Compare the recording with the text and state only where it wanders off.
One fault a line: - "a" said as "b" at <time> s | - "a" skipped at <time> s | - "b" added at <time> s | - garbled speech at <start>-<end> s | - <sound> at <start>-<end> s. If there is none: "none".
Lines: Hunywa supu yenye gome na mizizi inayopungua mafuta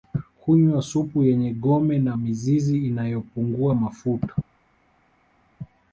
none